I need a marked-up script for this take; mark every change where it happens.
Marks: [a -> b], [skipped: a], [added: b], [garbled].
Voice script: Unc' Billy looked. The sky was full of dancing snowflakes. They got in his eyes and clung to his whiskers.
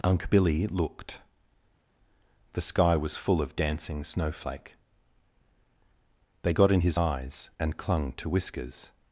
Unc' Billy looked. The sky was full of dancing [snowflakes. -> snowflake] They got in his eyes and clung to [skipped: his] whiskers.